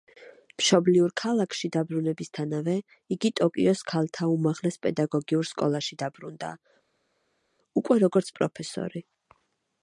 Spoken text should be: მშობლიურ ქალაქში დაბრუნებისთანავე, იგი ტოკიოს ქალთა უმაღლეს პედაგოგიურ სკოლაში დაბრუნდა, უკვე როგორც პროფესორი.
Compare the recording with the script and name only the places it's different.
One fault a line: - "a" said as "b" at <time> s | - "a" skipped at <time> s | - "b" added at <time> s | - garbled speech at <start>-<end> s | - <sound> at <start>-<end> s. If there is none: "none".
none